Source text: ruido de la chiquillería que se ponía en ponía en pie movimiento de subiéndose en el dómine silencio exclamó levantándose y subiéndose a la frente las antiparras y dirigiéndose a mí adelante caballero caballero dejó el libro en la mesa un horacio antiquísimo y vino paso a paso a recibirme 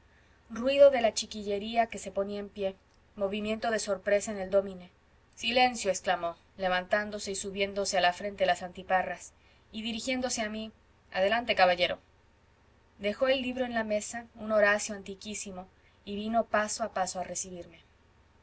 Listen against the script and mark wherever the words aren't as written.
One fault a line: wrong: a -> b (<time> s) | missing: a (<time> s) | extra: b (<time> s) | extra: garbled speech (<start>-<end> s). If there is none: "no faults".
missing: ponía en (2.5 s)
wrong: subiéndose -> sorpresa (3.8 s)
missing: caballero (12.0 s)